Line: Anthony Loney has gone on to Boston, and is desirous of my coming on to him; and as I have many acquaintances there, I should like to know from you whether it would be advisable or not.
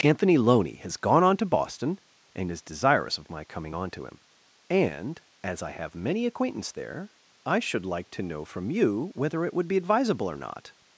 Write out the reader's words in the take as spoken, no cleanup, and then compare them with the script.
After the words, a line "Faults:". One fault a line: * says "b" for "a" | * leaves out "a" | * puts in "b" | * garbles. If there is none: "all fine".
Anthony Loney has gone on to Boston, and is desirous of my coming on to him; and as I have many acquaintance there, I should like to know from you whether it would be advisable or not.
Faults:
* says "acquaintance" for "acquaintances"